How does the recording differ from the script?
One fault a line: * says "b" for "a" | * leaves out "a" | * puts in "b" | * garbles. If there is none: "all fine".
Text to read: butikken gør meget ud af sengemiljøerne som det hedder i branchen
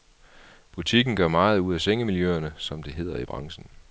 all fine